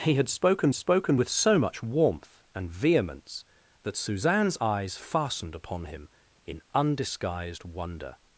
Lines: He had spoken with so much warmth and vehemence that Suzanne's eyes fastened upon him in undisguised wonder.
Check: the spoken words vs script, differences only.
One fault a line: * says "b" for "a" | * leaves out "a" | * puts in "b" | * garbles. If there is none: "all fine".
* puts in "spoken"